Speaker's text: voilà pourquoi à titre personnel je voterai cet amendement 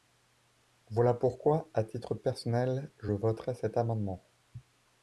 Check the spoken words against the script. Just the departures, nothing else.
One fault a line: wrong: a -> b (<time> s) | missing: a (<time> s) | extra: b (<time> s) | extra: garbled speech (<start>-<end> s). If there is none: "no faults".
no faults